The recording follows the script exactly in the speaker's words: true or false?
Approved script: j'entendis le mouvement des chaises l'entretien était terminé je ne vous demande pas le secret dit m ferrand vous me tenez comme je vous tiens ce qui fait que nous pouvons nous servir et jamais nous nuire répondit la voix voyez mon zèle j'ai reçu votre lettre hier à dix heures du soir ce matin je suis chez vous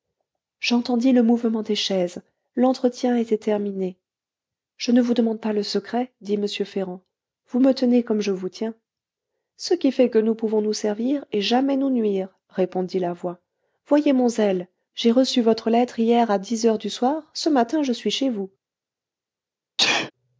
true